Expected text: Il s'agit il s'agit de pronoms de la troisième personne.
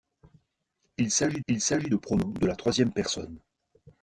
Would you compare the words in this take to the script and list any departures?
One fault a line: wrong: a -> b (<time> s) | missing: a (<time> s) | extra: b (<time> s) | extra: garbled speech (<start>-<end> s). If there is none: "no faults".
no faults